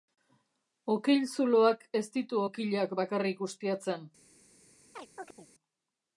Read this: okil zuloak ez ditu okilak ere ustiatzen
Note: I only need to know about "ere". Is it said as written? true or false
false